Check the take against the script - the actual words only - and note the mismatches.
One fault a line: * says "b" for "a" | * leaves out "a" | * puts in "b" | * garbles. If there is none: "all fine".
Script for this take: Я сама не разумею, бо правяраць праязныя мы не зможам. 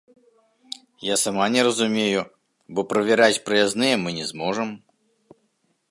all fine